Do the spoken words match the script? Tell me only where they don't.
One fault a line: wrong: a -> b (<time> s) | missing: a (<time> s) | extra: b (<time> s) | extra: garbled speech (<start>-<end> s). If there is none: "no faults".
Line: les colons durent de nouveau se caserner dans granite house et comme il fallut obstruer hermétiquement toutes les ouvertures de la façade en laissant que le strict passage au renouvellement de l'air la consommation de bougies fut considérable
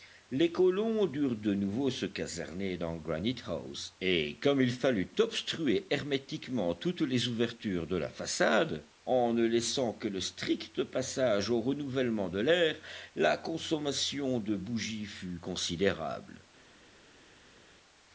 extra: ne (9.3 s)